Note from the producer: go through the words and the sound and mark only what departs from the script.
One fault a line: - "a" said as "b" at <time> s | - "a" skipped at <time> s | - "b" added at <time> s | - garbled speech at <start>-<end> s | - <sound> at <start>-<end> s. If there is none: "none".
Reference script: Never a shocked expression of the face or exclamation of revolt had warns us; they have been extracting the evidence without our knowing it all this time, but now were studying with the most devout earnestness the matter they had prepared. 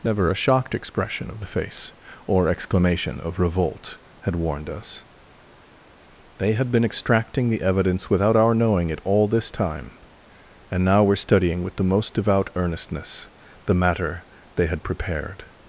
- "warns" said as "warned" at 4.3 s
- "have" said as "had" at 6.5 s
- "but" said as "and" at 10.7 s